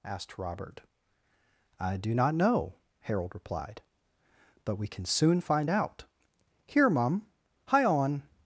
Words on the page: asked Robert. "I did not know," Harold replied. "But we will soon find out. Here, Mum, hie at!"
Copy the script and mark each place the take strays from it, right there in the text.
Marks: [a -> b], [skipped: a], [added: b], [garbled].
asked Robert. "I [did -> do] not know," Harold replied. "But we [will -> can] soon find out. Here, Mum, hie [at!" -> on]